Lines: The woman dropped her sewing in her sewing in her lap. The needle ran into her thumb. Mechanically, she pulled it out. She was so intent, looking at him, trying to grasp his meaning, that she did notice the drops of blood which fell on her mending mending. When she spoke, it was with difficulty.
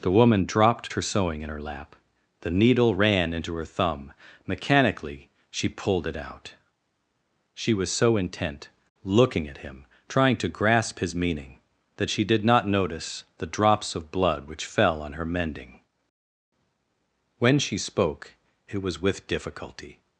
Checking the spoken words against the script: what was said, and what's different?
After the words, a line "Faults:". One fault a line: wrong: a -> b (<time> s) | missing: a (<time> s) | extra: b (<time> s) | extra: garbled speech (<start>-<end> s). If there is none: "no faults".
The woman dropped her sewing in her lap. The needle ran into her thumb. Mechanically, she pulled it out. She was so intent, looking at him, trying to grasp his meaning, that she did not notice the drops of blood which fell on her mending. When she spoke, it was with difficulty.
Faults:
missing: sewing in her (1.6 s)
extra: not (12.4 s)
missing: mending (15.8 s)